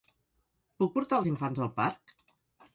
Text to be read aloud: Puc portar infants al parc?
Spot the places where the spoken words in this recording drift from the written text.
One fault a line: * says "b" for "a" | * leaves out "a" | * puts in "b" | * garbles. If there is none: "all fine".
* puts in "els"